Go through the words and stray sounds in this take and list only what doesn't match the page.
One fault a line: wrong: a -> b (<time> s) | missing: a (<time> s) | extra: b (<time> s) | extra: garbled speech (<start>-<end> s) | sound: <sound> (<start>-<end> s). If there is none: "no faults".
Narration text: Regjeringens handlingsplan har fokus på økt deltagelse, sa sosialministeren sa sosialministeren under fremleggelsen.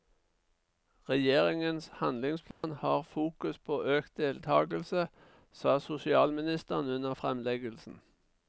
sound: dropout (2.5-2.6 s)
missing: sa sosialministeren (6.9 s)